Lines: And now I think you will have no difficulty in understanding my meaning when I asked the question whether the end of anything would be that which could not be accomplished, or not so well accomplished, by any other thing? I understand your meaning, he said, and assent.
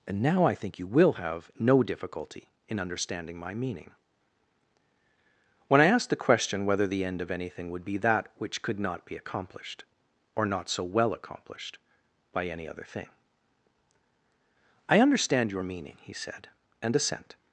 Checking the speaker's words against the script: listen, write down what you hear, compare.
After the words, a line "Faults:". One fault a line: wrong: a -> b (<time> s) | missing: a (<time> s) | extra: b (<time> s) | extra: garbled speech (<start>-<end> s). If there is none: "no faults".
And now I think you will have no difficulty in understanding my meaning when I asked the question whether the end of anything would be that which could not be accomplished, or not so well accomplished, by any other thing? I understand your meaning, he said, and assent.
Faults:
no faults